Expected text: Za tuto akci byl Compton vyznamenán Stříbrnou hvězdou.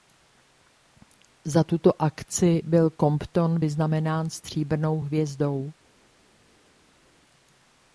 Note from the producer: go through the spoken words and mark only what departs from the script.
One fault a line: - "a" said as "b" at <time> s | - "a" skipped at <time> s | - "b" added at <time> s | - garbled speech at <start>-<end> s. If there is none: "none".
none